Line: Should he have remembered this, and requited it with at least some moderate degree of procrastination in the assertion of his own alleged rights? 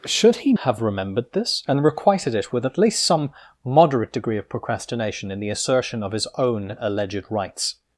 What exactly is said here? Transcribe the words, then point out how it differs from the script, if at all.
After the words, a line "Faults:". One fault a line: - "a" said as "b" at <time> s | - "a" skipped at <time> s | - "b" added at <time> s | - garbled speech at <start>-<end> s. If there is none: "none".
Should he have remembered this, and requited it with at least some moderate degree of procrastination in the assertion of his own alleged rights?
Faults:
none